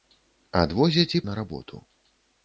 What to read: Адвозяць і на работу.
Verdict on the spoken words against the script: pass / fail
pass